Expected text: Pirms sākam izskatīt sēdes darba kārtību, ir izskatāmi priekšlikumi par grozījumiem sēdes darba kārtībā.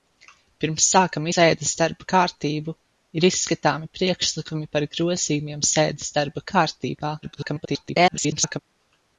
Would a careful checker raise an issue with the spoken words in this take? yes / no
yes